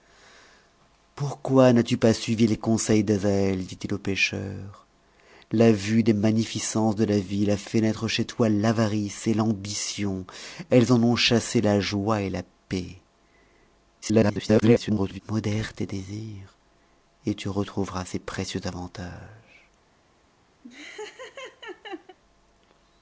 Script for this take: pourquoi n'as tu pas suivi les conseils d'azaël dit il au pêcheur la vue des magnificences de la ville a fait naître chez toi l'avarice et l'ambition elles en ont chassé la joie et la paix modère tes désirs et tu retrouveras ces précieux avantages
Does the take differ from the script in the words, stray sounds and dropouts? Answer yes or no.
yes